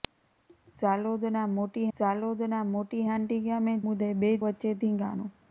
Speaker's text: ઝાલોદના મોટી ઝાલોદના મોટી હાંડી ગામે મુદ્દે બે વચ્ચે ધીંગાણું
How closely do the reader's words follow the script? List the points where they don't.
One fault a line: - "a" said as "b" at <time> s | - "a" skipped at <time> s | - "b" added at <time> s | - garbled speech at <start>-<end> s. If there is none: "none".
none